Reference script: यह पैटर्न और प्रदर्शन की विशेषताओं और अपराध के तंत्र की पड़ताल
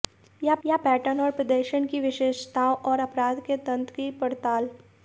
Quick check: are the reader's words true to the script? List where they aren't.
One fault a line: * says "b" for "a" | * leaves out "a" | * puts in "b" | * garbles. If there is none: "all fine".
* puts in "यह"